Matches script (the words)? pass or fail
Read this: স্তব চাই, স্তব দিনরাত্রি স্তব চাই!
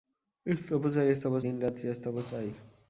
pass